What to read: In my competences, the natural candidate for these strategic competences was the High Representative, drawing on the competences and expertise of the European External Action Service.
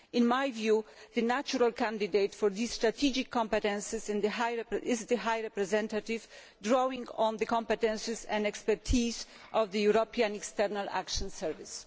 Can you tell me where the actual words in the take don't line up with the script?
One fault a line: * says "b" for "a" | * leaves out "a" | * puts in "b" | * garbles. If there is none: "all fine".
* says "view" for "competences"
* says "is" for "was"